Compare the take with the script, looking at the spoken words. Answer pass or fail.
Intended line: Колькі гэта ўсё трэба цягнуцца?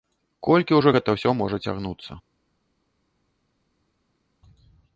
fail